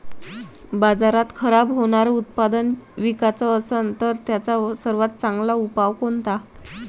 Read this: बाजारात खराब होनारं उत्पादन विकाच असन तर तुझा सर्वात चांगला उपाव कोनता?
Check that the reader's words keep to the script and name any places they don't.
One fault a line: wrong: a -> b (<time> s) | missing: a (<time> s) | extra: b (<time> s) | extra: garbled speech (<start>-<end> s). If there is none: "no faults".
wrong: तुझा -> त्याचा (4.3 s)